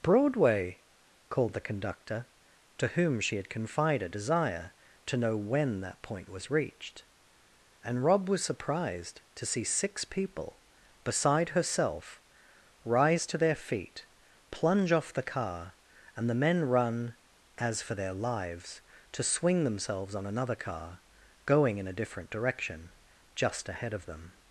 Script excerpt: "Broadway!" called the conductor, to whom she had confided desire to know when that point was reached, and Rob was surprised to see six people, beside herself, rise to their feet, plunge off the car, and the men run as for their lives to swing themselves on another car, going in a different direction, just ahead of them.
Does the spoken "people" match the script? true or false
true